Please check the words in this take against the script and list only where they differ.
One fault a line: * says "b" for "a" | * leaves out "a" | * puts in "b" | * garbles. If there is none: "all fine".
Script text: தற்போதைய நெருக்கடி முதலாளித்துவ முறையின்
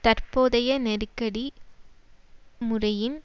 * leaves out "முதலாளித்துவ"